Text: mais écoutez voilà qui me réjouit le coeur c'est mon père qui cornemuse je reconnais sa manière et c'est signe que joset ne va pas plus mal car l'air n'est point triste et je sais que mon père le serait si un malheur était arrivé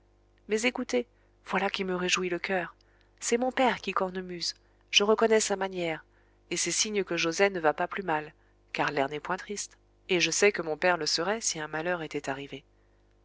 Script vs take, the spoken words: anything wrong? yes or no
no